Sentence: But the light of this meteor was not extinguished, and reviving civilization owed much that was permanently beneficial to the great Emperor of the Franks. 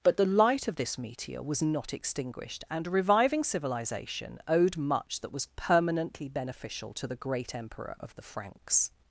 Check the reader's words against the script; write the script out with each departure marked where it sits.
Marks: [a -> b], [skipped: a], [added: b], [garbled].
But the light of this meteor was not extinguished, and reviving civilization owed much that was permanently beneficial to the great Emperor of the Franks.